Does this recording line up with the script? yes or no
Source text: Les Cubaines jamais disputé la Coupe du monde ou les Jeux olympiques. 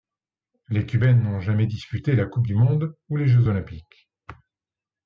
no